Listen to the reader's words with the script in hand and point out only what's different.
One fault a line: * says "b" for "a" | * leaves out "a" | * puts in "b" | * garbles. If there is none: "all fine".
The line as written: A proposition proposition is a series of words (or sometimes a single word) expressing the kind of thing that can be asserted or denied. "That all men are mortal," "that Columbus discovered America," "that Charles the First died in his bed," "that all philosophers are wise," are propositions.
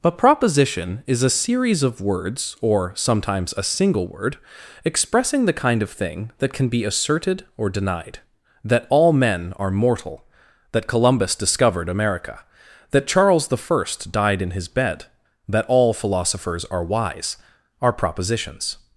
* leaves out "proposition"